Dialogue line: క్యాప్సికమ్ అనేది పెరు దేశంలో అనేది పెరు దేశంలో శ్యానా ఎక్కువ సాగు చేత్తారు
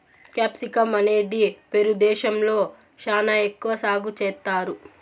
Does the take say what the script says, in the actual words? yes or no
no